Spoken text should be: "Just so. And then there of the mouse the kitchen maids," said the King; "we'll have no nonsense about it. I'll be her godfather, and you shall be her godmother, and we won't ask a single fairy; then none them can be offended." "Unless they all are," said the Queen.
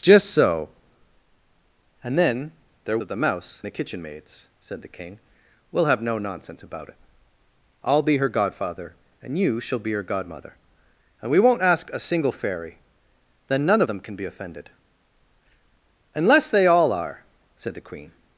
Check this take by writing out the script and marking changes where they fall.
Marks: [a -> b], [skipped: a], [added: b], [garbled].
"Just so. And then there of the mouse the kitchen maids," said the King; "we'll have no nonsense about it. I'll be her godfather, and you shall be her godmother, and we won't ask a single fairy; then none them can be offended." "Unless they all are," said the Queen.